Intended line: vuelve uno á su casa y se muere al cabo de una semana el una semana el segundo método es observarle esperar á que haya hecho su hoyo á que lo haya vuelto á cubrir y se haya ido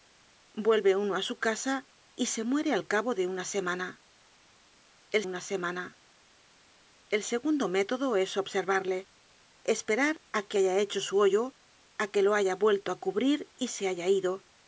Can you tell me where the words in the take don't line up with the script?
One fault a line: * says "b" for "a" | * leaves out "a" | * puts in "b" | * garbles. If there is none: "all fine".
all fine